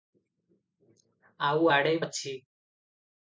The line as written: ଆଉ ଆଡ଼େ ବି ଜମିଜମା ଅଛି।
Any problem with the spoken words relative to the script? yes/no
yes